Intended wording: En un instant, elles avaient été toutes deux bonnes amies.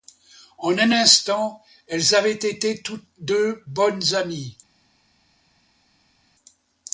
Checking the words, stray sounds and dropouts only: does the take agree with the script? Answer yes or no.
yes